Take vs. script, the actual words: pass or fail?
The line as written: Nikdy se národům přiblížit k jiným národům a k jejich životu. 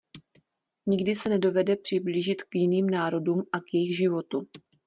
fail